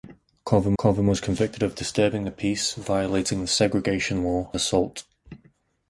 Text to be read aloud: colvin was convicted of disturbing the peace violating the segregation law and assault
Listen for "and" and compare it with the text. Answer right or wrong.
wrong